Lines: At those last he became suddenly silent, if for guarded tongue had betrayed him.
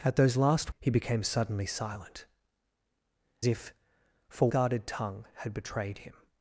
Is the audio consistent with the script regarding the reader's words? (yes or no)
yes